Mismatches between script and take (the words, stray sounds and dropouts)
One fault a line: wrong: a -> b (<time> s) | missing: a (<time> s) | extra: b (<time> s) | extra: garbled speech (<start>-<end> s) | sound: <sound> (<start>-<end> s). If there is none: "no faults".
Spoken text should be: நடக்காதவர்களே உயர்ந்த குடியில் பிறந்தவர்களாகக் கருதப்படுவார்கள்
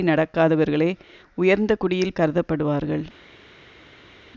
missing: பிறந்தவர்களாகக் (2.2 s)